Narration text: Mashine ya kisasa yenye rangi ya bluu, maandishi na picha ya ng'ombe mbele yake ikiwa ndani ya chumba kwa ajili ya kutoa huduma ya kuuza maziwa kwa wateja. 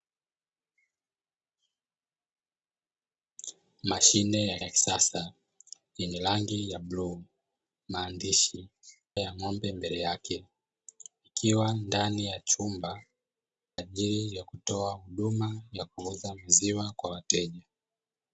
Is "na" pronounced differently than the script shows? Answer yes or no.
yes